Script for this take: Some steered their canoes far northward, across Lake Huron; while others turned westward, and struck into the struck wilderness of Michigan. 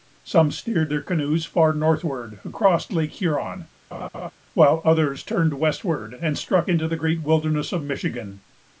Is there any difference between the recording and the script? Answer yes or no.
yes